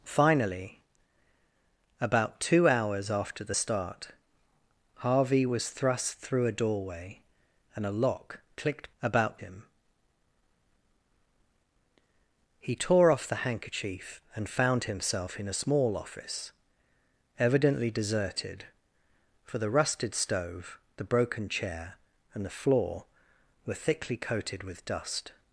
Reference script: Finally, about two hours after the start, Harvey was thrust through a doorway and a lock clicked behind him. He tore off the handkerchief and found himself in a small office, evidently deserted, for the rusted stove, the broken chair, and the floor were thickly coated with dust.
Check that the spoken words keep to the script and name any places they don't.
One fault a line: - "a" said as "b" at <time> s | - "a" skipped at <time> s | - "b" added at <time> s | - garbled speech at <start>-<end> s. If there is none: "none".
- "behind" said as "about" at 9.0 s